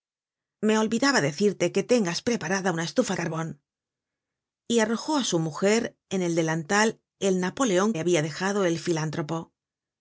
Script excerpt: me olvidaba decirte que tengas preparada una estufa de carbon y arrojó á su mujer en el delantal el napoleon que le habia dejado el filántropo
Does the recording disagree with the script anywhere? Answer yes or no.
yes